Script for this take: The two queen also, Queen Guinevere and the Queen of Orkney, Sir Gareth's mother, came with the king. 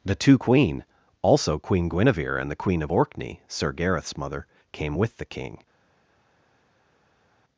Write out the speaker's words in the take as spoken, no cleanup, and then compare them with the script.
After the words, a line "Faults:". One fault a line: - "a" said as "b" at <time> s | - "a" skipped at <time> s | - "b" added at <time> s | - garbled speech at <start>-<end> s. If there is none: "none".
The two queen also, Queen Guinevere and the Queen of Orkney, Sir Gareth's mother, came with the king.
Faults:
none